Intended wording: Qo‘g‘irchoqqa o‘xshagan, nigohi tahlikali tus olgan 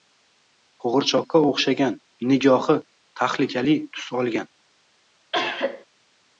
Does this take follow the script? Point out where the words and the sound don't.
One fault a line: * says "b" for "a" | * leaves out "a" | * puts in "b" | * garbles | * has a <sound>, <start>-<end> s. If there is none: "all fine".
* has a cough, 5.3-5.9 s